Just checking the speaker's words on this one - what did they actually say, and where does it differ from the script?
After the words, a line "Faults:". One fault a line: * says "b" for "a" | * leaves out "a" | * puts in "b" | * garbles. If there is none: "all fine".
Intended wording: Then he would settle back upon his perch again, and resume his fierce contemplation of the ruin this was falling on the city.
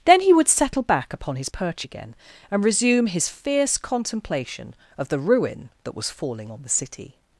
Then he would settle back upon his perch again, and resume his fierce contemplation of the ruin that was falling on the city.
Faults:
* says "that" for "this"